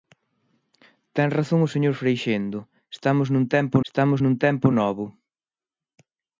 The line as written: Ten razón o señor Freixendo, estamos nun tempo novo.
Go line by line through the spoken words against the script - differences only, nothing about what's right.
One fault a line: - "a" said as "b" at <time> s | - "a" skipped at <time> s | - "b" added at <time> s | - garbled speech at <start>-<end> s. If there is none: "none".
- "estamos nun tempo" added at 3.9 s